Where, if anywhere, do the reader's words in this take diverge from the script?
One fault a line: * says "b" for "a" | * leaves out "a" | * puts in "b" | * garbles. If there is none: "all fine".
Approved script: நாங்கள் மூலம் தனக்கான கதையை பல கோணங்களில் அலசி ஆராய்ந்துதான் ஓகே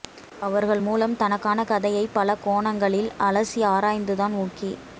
* says "அவர்கள்" for "நாங்கள்"